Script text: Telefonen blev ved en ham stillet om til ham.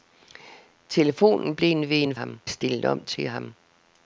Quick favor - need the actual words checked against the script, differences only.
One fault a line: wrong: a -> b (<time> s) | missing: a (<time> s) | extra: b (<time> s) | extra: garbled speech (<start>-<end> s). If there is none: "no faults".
no faults